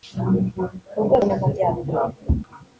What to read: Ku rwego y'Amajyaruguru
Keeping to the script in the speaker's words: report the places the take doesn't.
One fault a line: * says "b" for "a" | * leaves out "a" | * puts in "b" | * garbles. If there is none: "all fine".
all fine